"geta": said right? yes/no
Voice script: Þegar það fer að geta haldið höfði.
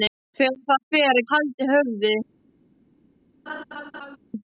no